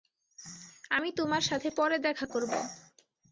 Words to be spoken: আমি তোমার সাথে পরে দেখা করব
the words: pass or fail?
pass